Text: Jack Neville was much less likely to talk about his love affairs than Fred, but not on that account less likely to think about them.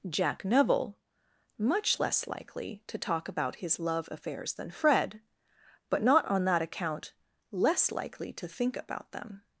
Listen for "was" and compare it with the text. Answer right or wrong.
wrong